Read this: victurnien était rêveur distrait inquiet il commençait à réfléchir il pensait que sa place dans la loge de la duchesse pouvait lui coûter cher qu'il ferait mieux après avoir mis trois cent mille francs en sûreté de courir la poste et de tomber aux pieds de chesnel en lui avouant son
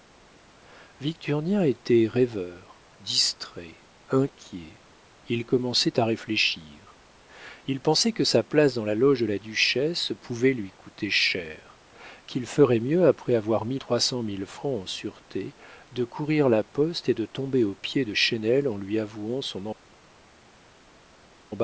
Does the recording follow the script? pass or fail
pass